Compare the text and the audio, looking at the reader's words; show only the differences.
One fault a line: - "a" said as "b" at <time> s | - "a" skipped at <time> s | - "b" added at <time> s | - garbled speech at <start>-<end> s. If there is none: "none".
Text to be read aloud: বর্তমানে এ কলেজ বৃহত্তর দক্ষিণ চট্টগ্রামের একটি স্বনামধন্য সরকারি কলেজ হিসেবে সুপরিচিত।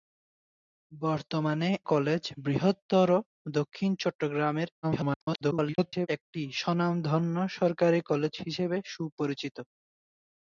- "এ" skipped at 1.7 s
- garbled speech at 4.8-6.1 s